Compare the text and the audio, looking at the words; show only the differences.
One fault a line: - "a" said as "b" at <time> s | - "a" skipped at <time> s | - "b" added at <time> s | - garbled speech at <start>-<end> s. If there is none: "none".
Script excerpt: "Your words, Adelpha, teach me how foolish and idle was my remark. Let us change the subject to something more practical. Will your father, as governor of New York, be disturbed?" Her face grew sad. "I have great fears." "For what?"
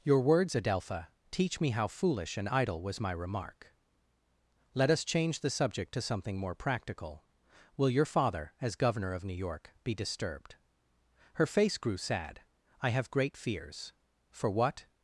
none